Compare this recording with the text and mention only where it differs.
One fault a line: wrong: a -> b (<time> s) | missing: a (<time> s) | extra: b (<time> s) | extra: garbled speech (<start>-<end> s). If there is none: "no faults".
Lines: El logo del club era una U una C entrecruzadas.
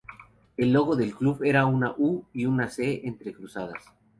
extra: y (2.3 s)